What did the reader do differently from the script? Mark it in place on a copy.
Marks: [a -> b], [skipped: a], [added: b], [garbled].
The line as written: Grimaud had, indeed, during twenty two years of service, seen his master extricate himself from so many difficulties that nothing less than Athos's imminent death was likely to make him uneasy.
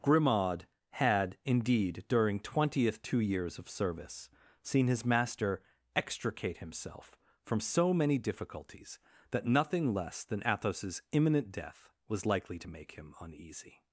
Grimaud had, indeed, during [twenty -> twentieth] two years of service, seen his master extricate himself from so many difficulties that nothing less than Athos's imminent death was likely to make him uneasy.